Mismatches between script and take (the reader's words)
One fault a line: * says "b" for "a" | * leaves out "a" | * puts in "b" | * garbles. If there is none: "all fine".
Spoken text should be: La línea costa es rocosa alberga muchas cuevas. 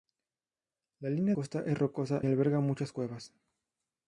all fine